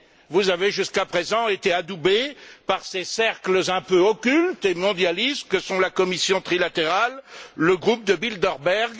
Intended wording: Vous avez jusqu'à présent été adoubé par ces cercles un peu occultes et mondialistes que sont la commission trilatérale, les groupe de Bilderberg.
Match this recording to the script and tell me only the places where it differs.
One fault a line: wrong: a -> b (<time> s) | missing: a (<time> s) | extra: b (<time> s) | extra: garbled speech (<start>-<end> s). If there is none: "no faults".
wrong: les -> le (7.6 s)